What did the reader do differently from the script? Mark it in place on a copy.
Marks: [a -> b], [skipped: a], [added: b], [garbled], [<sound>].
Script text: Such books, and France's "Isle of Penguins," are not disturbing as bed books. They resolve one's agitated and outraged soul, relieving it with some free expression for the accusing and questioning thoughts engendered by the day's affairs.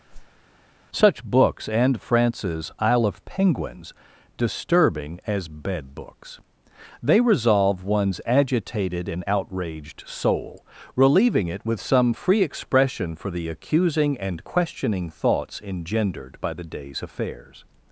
[whoosh] Such books, and France's "Isle of Penguins," [skipped: are not] disturbing as bed books. They resolve one's agitated and outraged soul, relieving it with some free expression for the accusing and questioning thoughts engendered by the day's affairs.